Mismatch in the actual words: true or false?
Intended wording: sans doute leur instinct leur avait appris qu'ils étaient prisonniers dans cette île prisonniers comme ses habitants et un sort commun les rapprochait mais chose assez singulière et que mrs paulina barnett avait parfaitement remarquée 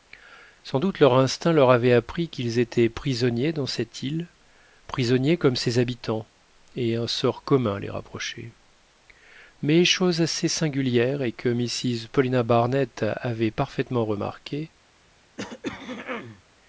false